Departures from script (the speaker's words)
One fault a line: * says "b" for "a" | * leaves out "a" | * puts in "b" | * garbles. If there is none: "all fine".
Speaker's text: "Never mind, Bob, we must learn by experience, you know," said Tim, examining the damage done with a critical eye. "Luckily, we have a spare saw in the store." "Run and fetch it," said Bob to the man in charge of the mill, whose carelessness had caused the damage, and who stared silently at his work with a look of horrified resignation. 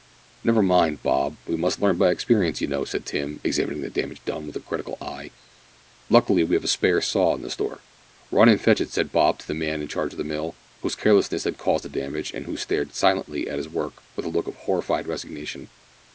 all fine